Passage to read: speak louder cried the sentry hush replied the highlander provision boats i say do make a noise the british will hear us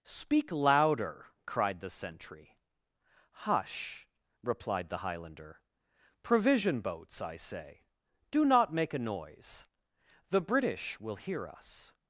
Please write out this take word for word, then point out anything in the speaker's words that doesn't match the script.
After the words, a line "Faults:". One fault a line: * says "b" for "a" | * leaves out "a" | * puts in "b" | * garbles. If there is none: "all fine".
speak louder cried the sentry hush replied the highlander provision boats i say do not make a noise the british will hear us
Faults:
* puts in "not"